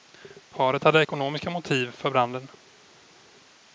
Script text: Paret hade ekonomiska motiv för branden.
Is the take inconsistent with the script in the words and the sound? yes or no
no